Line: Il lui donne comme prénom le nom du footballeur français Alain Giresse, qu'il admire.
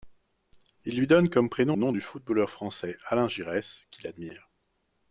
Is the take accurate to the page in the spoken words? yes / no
no